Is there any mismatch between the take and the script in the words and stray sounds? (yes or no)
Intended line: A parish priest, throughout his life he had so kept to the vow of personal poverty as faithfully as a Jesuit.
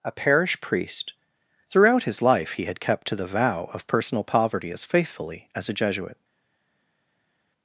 yes